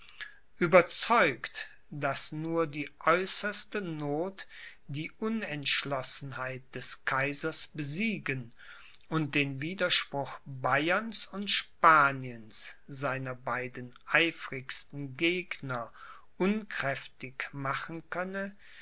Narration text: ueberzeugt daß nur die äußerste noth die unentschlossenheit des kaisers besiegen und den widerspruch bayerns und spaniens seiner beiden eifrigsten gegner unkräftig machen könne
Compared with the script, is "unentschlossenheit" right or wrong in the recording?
right